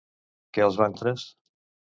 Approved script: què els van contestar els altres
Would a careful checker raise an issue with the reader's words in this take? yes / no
yes